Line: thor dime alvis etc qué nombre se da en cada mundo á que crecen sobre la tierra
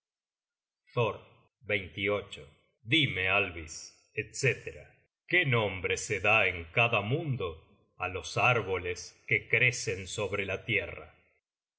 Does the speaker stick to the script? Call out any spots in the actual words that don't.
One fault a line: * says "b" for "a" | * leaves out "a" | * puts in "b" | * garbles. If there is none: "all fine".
* puts in "los árboles"